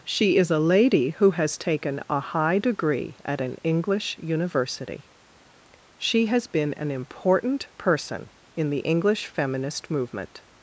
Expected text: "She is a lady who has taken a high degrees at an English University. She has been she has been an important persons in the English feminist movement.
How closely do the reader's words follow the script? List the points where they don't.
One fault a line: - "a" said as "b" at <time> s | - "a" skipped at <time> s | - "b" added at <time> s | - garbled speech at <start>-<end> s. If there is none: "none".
- "degrees" said as "degree" at 2.6 s
- "she has been" skipped at 6.7 s
- "persons" said as "person" at 7.8 s